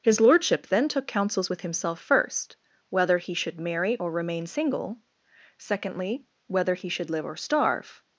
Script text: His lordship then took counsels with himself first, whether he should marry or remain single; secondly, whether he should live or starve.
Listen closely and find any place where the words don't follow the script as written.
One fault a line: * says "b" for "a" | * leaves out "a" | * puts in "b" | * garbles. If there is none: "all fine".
all fine